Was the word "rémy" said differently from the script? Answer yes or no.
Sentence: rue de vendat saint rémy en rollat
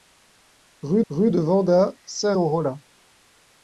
yes